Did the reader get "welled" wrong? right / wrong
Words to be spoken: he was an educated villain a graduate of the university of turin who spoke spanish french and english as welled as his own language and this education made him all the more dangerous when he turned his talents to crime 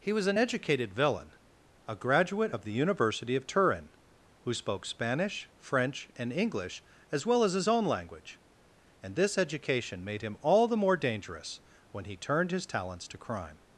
wrong